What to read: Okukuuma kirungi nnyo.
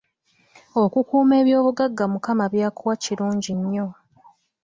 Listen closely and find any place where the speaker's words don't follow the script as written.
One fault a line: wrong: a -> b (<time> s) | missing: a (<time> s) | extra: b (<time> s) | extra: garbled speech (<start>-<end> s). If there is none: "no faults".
extra: ebyobugagga Mukama by'akuwa (1.4 s)